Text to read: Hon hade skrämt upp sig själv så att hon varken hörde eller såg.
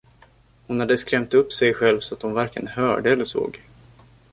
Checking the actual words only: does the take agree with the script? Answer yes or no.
yes